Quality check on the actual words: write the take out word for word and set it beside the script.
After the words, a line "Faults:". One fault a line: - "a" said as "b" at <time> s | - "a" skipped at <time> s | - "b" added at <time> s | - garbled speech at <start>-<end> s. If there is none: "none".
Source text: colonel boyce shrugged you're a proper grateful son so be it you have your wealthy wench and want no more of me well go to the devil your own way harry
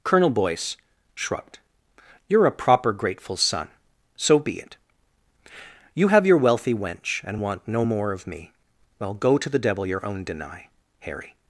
colonel boyce shrugged you're a proper grateful son so be it you have your wealthy wench and want no more of me well go to the devil your own deny harry
Faults:
- "way" said as "deny" at 10.2 s